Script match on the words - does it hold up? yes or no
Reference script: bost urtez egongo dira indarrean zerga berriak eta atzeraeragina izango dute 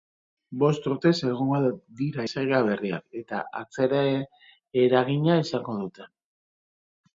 no